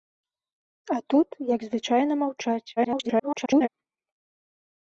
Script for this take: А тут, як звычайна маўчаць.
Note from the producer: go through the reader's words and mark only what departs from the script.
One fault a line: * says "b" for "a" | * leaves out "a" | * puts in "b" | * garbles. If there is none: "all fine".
* garbles